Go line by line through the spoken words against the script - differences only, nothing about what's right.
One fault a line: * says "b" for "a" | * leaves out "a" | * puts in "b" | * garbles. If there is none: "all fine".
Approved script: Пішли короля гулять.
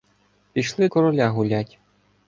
all fine